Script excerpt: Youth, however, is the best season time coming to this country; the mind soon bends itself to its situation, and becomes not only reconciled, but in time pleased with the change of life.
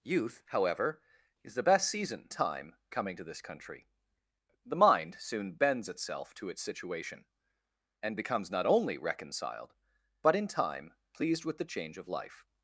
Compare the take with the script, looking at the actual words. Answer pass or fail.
pass